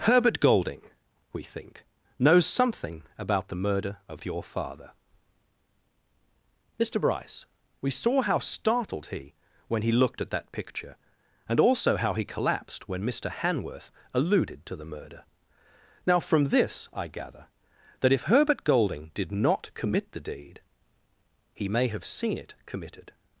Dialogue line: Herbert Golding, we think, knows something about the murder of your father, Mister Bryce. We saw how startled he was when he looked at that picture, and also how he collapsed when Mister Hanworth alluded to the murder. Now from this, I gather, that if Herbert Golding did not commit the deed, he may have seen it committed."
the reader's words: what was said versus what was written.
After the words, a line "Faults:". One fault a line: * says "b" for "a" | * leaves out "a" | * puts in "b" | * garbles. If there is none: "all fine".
Herbert Golding, we think, knows something about the murder of your father, Mister Bryce. We saw how startled he when he looked at that picture, and also how he collapsed when Mister Hanworth alluded to the murder. Now from this, I gather, that if Herbert Golding did not commit the deed, he may have seen it committed."
Faults:
* leaves out "was"